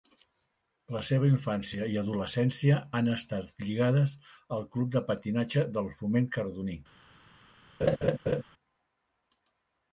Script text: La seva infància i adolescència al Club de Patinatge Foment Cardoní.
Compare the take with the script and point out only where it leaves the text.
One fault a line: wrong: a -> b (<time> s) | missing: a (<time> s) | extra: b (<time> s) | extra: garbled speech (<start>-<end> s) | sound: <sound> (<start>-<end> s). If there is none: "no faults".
extra: han estat lligades (3.0 s)
extra: del (5.8 s)
sound: laugh (7.8-8.4 s)